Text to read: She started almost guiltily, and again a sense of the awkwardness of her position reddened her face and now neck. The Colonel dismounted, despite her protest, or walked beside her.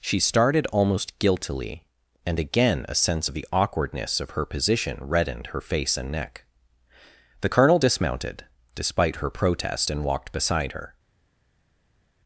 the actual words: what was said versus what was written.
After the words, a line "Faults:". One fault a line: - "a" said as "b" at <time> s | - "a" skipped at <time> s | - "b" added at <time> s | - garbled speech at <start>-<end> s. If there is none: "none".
She started almost guiltily, and again a sense of the awkwardness of her position reddened her face and neck. The Colonel dismounted, despite her protest, and walked beside her.
Faults:
- "now" skipped at 6.1 s
- "or" said as "and" at 9.9 s